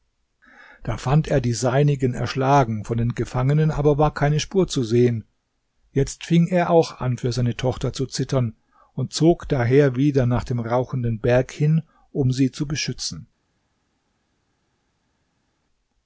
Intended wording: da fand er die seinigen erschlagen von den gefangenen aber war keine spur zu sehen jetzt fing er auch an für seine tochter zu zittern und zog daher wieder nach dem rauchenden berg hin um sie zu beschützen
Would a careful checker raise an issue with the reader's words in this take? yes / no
no